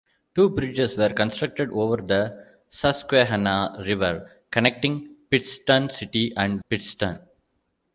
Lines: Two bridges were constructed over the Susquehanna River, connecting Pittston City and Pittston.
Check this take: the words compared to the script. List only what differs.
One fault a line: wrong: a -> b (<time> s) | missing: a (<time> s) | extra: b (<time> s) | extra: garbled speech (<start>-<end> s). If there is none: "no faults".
no faults